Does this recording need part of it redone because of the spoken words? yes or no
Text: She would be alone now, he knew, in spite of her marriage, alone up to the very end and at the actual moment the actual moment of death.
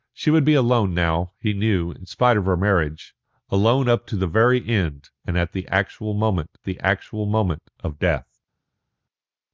no